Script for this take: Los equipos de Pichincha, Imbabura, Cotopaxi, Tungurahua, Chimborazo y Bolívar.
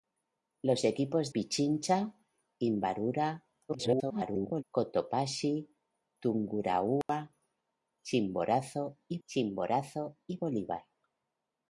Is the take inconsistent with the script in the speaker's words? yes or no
yes